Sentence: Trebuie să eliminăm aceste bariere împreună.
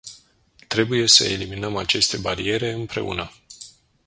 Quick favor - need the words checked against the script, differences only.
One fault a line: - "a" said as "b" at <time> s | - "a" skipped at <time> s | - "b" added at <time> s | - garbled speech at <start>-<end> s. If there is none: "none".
none